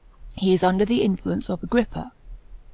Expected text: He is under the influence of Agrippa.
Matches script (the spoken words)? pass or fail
pass